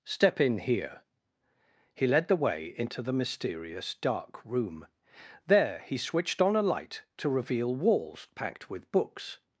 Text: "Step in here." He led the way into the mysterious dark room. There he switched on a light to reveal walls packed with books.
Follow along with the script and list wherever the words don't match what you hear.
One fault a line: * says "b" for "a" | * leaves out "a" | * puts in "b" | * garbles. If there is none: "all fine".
all fine